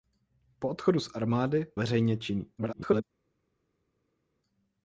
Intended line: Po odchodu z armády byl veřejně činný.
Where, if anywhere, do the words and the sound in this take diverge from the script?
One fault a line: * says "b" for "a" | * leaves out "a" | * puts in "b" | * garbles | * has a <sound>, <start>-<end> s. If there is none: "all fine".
* leaves out "byl"
* garbles